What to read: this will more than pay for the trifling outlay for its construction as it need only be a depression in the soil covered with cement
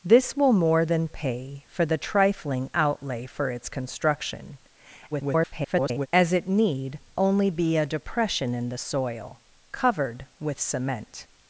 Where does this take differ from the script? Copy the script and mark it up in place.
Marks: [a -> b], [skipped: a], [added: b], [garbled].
this will more than pay for the trifling outlay for its construction [garbled] as it need only be a depression in the soil covered with cement